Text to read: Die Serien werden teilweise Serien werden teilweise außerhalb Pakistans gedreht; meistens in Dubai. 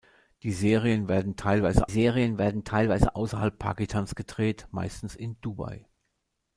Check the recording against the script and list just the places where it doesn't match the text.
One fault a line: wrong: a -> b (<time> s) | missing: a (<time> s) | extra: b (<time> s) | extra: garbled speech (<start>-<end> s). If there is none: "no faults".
no faults